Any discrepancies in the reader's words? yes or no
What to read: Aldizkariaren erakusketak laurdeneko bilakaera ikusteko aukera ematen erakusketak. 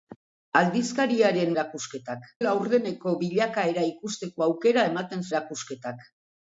no